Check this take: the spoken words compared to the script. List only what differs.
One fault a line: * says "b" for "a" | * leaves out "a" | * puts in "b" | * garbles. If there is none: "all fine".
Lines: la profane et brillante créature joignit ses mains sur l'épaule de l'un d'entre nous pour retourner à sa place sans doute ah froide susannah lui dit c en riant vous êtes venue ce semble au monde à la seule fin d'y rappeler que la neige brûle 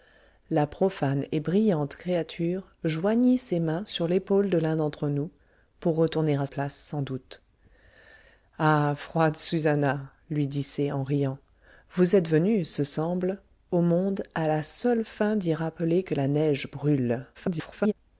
* leaves out "sa"
* garbles